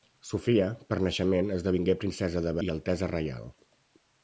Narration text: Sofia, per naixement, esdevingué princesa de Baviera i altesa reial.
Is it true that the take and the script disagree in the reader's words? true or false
true